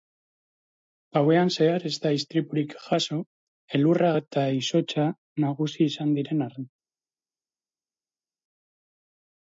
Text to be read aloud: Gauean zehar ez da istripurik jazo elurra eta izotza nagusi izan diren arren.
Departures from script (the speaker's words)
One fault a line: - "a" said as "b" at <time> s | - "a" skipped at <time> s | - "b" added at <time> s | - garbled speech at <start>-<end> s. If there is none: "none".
none